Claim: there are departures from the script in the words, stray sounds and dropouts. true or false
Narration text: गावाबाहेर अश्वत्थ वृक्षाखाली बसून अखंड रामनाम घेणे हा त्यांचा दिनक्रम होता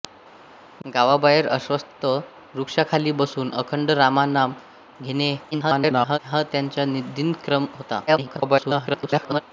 true